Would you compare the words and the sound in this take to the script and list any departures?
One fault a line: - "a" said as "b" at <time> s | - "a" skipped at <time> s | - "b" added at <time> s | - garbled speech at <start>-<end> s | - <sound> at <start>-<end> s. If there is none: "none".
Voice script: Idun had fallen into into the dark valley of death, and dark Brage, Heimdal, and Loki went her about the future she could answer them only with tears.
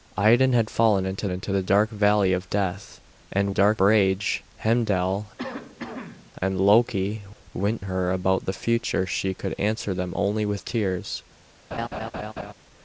- cough at 5.4-6.3 s
- laugh at 11.7-12.5 s